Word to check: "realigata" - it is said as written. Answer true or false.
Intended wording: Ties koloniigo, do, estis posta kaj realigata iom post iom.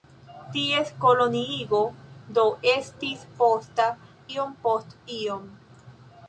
false